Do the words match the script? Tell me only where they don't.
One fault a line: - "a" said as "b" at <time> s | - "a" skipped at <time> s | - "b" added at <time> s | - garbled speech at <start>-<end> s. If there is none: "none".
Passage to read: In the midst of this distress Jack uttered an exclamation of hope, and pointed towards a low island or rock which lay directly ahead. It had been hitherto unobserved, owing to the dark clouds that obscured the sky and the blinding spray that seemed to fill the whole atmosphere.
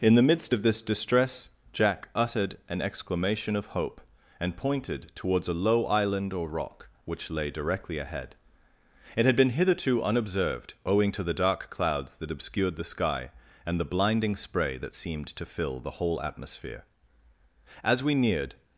- "As we neared" added at 17.8 s